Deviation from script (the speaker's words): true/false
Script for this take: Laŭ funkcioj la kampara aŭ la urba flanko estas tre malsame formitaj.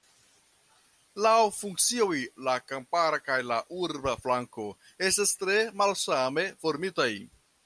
true